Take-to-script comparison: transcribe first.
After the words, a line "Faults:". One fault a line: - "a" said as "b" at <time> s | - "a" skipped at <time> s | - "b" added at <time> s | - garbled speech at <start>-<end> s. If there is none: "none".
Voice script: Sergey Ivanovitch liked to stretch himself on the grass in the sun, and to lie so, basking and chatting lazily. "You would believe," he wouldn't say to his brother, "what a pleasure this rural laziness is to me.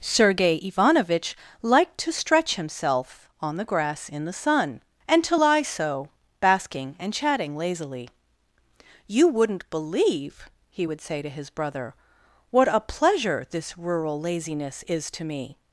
Sergey Ivanovitch liked to stretch himself on the grass in the sun, and to lie so, basking and chatting lazily. "You wouldn't believe," he would say to his brother, "what a pleasure this rural laziness is to me.
Faults:
- "would" said as "wouldn't" at 9.3 s
- "wouldn't" said as "would" at 10.8 s